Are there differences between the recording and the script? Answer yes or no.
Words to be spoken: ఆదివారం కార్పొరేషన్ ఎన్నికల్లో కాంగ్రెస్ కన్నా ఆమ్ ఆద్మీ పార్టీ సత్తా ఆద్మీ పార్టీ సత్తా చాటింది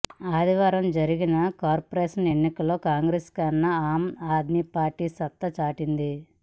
yes